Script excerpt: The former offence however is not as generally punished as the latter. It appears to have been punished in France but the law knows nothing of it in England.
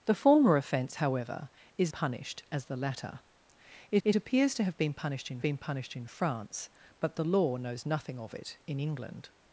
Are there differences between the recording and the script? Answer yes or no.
yes